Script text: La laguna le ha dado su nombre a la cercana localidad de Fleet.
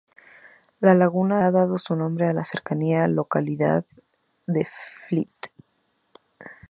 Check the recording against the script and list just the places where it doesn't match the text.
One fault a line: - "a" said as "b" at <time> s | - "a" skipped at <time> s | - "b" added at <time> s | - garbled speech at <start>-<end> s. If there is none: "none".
- "le" skipped at 1.4 s